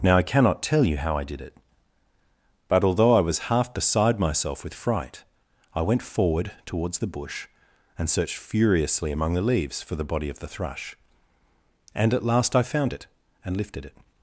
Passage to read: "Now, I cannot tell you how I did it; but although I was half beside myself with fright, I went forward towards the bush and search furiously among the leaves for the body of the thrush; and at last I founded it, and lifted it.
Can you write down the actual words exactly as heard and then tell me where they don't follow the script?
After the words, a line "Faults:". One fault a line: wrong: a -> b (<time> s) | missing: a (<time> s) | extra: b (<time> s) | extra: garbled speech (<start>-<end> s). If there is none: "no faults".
"Now, I cannot tell you how I did it; but although I was half beside myself with fright, I went forward towards the bush and searched furiously among the leaves for the body of the thrush; and at last I found it, and lifted it.
Faults:
wrong: search -> searched (8.1 s)
wrong: founded -> found (12.6 s)